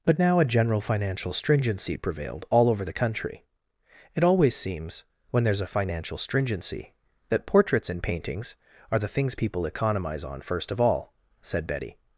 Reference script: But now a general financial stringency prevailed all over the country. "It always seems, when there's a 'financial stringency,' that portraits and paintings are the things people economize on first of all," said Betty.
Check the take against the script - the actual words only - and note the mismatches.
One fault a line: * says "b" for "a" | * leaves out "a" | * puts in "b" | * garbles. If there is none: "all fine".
all fine